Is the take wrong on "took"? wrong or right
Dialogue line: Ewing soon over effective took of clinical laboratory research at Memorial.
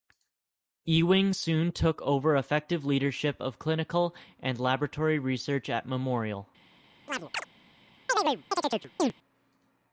wrong